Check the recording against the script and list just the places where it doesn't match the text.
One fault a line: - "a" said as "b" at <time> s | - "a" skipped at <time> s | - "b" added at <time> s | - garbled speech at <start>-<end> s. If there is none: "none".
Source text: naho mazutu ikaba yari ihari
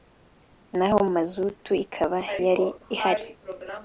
none